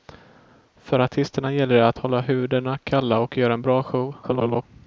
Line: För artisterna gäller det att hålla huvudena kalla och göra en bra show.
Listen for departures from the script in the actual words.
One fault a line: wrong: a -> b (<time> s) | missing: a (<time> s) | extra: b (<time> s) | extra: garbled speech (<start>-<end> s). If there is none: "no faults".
extra: garbled speech (4.2-4.6 s)